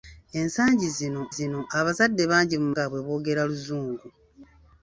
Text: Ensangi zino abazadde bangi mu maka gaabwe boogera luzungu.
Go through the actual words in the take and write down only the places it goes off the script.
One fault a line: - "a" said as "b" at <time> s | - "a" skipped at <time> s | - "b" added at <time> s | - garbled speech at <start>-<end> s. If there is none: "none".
- "zino" added at 1.4 s
- "maka" skipped at 2.7 s